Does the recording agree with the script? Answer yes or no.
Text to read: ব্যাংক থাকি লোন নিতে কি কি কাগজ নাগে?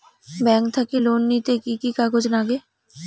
yes